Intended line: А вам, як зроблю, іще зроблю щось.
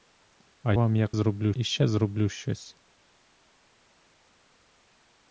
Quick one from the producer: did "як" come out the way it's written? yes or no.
yes